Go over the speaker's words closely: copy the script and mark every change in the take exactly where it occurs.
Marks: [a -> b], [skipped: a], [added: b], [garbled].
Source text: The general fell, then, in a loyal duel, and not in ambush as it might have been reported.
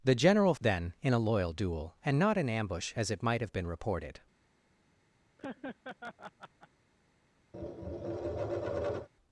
The general [skipped: fell,] then, in a loyal duel, and not in ambush as it might have been reported.